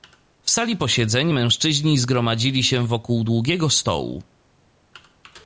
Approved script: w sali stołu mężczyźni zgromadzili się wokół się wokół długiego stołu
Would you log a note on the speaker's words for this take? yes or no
yes